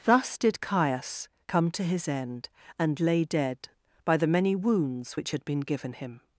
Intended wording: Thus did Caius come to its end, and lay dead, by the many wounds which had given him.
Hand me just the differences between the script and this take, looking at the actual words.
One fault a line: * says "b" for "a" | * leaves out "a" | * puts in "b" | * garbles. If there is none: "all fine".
* says "his" for "its"
* puts in "been"